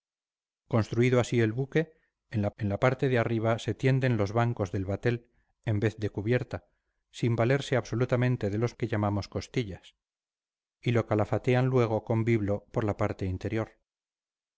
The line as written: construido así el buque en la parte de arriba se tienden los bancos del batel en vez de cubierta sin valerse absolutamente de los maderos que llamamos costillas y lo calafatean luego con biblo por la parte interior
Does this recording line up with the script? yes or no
no